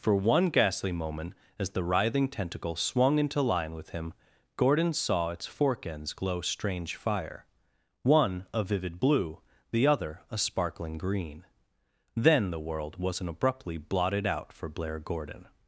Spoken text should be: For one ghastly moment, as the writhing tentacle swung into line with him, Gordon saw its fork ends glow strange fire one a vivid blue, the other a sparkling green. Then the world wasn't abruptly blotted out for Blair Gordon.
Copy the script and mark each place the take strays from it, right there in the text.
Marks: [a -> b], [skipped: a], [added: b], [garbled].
For one ghastly moment, as the writhing tentacle swung into line with him, Gordon saw its fork ends glow strange fire one a vivid blue, the other a sparkling green. Then the world wasn't abruptly blotted out for Blair Gordon.